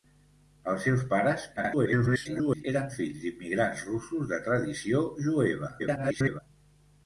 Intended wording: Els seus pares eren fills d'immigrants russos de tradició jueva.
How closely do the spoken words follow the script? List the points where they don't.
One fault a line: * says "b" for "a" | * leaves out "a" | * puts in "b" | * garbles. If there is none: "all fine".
* garbles
* garbles